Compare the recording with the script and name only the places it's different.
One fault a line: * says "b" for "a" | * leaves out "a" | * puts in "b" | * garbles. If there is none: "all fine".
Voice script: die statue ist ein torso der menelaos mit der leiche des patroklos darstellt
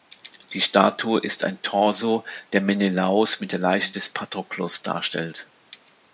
all fine